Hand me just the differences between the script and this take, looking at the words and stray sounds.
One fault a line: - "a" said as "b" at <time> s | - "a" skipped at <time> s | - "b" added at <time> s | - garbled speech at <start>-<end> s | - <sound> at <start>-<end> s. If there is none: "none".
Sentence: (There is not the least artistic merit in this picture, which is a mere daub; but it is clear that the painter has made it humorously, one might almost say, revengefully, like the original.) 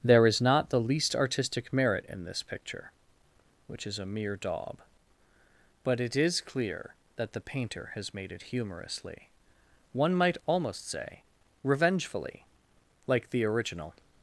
none